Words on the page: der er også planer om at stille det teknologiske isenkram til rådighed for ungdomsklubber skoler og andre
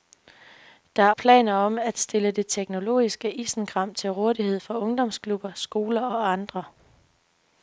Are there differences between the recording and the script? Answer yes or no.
yes